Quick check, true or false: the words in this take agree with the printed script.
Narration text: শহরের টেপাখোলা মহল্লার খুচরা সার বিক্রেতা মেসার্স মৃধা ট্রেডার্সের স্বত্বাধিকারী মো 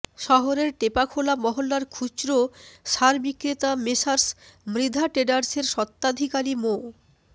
true